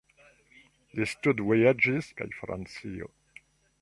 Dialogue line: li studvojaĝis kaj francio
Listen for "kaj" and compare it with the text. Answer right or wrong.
right